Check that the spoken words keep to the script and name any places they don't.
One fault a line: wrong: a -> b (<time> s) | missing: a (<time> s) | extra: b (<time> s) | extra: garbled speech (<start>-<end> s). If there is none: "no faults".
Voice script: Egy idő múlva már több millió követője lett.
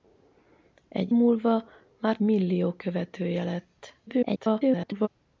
missing: idő (1.1 s)
missing: több (2.2 s)
extra: garbled speech (4.1-5.1 s)